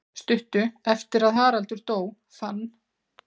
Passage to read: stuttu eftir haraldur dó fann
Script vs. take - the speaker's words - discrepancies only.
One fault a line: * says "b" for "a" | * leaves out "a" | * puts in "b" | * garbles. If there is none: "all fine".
* puts in "að"